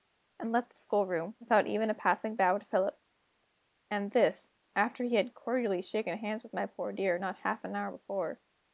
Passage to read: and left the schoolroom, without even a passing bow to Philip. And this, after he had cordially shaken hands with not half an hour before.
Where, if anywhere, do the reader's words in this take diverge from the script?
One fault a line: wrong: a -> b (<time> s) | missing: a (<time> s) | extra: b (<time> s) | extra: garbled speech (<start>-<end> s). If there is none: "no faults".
extra: my poor dear (6.5 s)